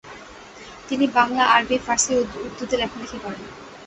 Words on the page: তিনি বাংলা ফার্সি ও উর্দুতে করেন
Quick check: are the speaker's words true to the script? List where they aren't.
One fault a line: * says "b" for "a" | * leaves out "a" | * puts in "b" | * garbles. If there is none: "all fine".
* puts in "আরবি"
* puts in "লেখালেখি"